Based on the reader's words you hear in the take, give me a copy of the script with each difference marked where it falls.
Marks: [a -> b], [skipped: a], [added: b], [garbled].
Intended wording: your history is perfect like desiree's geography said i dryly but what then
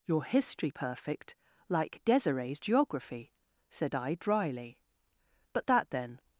your history [skipped: is] perfect like desiree's geography said i dryly but [what -> that] then